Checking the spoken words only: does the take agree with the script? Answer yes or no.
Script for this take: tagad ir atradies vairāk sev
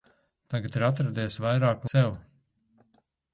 yes